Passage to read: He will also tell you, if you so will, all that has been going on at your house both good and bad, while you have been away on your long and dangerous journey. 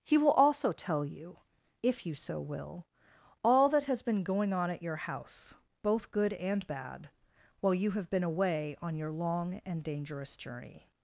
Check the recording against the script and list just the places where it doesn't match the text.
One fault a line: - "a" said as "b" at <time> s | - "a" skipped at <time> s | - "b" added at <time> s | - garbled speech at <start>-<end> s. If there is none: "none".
none